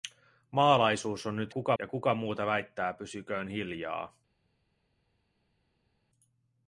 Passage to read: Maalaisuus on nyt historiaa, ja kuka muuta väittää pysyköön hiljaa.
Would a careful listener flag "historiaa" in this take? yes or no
yes